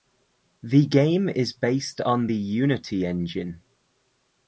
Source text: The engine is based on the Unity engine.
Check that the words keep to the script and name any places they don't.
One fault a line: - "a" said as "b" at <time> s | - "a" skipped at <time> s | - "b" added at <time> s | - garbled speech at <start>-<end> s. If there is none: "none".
- "engine" said as "game" at 0.9 s